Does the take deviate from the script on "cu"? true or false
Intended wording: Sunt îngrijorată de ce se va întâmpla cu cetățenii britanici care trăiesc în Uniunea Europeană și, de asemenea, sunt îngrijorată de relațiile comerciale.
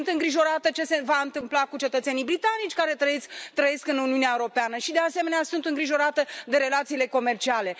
false